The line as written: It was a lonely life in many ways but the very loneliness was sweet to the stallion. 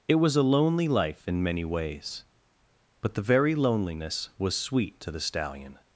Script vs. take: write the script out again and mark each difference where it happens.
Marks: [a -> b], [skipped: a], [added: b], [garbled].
It was a lonely life in many ways but the very loneliness was sweet to the stallion.